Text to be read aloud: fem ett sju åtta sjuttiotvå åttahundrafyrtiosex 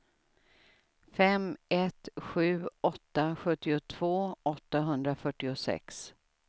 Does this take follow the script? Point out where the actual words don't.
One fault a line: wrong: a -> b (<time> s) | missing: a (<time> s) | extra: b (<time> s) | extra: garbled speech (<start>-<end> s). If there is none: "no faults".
no faults